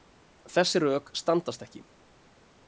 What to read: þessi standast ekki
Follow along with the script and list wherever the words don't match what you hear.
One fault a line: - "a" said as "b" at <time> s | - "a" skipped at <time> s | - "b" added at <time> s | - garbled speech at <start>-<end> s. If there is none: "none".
- "rök" added at 0.8 s